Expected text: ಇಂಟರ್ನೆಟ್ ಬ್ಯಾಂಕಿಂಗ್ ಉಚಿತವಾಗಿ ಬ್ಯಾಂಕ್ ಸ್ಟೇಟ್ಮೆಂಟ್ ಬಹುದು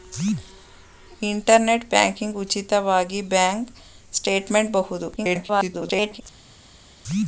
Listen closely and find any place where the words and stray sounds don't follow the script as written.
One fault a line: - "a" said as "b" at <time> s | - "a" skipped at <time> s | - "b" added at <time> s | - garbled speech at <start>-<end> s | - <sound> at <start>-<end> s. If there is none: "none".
- garbled speech at 5.2-6.2 s